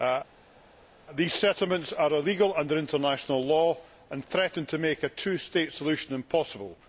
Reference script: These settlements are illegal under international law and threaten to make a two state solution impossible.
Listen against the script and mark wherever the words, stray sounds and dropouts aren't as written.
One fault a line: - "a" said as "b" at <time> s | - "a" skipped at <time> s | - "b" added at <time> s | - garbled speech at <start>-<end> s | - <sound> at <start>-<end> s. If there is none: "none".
none